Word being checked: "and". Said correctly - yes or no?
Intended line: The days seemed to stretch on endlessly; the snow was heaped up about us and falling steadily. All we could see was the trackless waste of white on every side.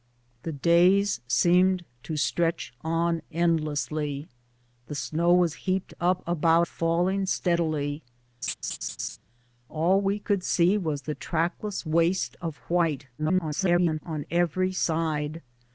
no